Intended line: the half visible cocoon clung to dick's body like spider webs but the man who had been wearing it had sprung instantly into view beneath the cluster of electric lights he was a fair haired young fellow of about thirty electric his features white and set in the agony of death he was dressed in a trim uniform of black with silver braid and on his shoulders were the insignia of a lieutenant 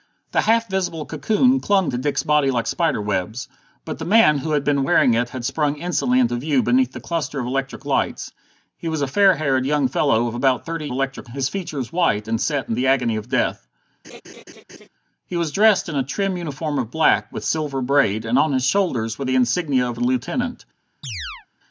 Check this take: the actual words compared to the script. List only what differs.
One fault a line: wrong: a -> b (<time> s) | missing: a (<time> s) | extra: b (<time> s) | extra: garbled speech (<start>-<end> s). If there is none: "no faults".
no faults